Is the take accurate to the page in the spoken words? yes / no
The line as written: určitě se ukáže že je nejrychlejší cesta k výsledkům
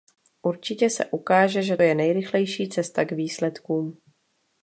yes